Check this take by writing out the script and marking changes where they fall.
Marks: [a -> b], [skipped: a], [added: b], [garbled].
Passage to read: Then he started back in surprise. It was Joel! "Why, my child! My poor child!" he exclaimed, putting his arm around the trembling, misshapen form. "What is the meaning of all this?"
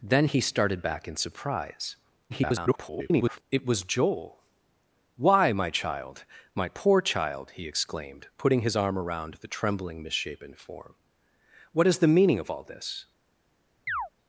Then he started back in surprise. [garbled] It was Joel! "Why, my child! My poor child!" he exclaimed, putting his arm around the trembling, misshapen form. "What is the meaning of all this?"